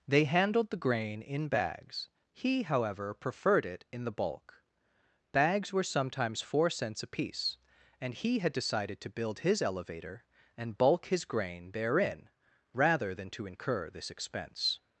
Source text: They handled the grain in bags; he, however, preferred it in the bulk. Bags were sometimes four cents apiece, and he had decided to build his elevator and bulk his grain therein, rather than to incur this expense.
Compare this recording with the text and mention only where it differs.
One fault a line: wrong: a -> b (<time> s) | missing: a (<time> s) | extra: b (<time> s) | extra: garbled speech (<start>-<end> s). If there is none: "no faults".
no faults